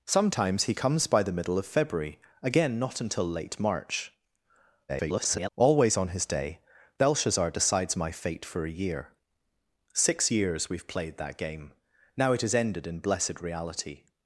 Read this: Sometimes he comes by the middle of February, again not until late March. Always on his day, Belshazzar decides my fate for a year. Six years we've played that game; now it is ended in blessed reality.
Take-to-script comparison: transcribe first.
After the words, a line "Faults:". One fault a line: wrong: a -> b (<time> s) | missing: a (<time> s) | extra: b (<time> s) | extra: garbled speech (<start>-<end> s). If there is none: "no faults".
Sometimes he comes by the middle of February, again not until late March. [garbled] Always on his day, Belshazzar decides my fate for a year. Six years we've played that game; now it is ended in blessed reality.
Faults:
extra: garbled speech (4.9-5.5 s)